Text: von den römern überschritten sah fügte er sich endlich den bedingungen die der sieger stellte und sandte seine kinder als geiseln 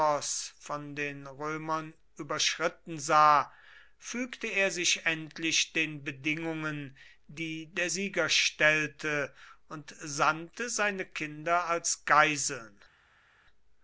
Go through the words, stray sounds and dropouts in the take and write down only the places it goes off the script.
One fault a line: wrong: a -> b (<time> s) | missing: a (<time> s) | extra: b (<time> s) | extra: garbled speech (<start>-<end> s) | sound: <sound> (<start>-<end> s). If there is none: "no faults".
no faults